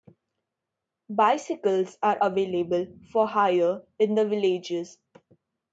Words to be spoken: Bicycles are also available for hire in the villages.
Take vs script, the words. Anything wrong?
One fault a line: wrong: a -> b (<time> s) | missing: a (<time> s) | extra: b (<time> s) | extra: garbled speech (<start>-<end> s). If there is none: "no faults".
missing: also (2.2 s)